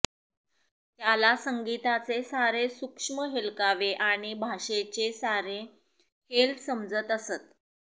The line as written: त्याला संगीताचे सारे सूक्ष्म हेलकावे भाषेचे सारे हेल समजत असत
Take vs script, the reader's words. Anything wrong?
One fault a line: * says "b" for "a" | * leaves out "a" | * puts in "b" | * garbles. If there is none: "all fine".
* puts in "आणि"